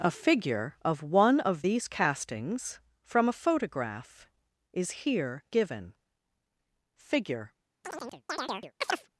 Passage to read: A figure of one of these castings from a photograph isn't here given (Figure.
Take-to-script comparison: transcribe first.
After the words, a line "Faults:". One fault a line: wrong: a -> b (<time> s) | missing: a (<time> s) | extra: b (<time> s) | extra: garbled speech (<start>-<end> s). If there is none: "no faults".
A figure of one of these castings from a photograph is here given (Figure.
Faults:
wrong: isn't -> is (4.7 s)